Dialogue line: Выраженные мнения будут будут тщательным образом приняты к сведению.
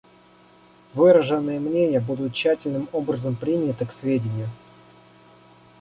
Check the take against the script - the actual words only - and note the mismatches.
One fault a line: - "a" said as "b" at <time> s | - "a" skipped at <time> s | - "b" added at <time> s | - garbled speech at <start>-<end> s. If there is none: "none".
- "будут" skipped at 2.3 s